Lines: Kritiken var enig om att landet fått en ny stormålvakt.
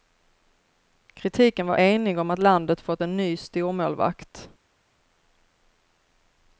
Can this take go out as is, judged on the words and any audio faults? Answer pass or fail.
pass